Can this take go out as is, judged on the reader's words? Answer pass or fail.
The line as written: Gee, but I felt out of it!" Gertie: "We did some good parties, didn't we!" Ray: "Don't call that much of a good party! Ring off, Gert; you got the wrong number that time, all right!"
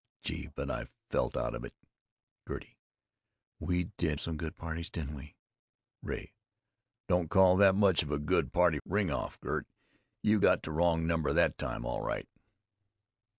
pass